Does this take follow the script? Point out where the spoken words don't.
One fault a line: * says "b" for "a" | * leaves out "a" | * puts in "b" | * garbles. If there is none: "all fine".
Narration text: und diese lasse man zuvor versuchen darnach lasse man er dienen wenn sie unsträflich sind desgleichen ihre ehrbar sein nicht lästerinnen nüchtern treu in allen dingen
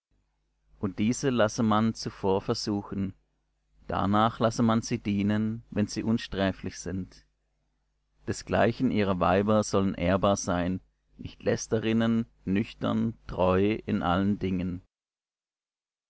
* says "sie" for "er"
* puts in "weiber sollen"